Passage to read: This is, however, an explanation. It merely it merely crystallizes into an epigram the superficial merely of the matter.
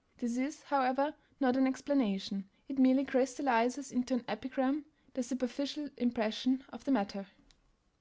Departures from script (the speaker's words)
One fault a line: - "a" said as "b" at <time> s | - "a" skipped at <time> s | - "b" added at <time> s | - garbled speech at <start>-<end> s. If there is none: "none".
- "not" added at 1.4 s
- "it merely" skipped at 3.0 s
- "merely" said as "impression" at 6.0 s